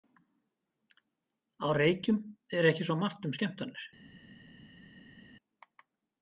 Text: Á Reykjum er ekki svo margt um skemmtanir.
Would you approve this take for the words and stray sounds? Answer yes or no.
yes